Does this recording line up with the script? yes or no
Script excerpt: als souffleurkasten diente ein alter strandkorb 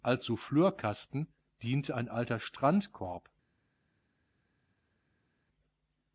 yes